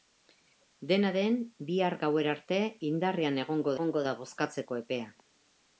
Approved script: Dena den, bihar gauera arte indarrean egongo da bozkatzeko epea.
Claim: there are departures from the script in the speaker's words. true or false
true